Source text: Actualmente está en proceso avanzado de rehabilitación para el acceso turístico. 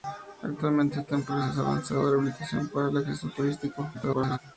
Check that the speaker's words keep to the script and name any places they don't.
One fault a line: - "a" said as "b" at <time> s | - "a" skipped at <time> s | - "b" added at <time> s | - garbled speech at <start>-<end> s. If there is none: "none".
- garbled speech at 3.9-4.4 s